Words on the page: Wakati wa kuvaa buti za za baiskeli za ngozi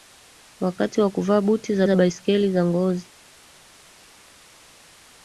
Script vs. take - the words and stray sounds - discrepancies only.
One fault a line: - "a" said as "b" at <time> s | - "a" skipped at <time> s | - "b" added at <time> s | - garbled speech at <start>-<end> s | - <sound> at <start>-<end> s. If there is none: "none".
none